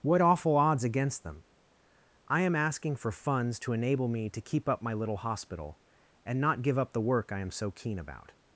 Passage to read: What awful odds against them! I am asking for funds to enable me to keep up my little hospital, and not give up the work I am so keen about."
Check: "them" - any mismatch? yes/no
no